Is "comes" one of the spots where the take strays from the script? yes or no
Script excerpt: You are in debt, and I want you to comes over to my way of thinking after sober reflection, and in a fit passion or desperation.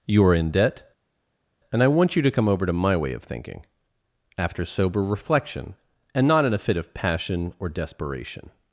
yes